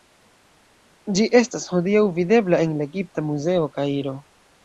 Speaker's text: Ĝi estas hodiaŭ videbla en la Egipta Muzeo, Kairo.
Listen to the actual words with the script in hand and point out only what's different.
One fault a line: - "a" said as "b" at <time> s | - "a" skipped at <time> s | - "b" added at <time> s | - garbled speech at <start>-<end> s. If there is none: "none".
none